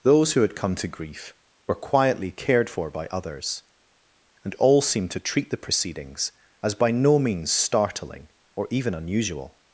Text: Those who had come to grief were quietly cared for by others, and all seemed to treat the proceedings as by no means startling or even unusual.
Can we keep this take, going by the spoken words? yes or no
yes